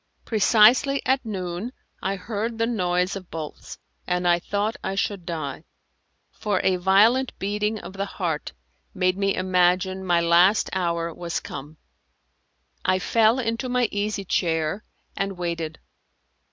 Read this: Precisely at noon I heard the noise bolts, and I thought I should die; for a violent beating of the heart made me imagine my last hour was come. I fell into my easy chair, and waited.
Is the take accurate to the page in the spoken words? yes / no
no